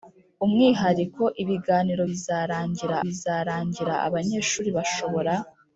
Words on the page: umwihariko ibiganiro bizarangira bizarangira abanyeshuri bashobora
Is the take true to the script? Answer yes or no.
yes